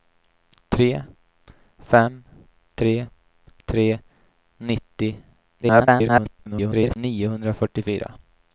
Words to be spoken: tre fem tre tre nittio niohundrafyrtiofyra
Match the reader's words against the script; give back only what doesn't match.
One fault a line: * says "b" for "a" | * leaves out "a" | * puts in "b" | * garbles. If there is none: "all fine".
* garbles